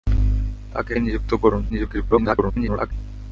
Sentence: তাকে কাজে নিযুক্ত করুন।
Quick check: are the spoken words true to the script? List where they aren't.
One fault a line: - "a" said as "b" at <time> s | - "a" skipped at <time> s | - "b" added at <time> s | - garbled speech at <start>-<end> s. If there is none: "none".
- "কাজে" skipped at 0.9 s
- garbled speech at 1.7-2.9 s